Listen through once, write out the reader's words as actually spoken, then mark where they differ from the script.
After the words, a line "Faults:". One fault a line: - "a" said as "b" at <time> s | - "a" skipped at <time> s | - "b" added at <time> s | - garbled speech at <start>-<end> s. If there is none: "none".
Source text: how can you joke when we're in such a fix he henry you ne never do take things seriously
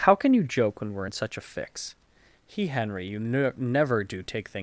how can you joke when we're in such a fix he henry you ne never do take things
Faults:
- "seriously" skipped at 4.6 s